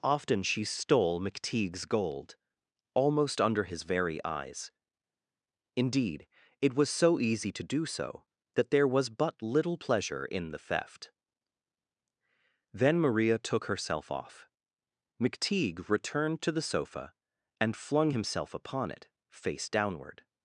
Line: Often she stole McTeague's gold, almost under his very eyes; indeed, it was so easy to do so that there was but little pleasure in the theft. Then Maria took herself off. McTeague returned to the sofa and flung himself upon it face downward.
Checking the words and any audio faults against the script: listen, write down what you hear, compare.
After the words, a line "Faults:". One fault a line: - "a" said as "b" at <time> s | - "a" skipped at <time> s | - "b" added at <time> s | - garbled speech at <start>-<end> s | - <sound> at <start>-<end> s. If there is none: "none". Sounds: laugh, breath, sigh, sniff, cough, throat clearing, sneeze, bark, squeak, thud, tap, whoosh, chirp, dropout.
Often she stole McTeague's gold, almost under his very eyes; indeed, it was so easy to do so that there was but little pleasure in the theft. Then Maria took herself off. McTeague returned to the sofa and flung himself upon it face downward.
Faults:
none